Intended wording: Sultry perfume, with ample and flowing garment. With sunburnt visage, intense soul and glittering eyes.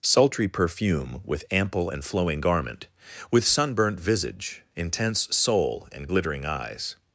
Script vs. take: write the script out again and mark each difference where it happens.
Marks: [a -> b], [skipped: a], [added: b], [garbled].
Sultry perfume, with ample and flowing garment. With sunburnt visage, intense soul and glittering eyes.